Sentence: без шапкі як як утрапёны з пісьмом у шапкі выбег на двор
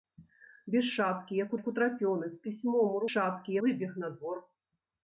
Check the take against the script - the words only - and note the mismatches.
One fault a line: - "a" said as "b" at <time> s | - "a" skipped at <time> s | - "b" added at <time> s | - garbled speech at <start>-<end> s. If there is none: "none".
none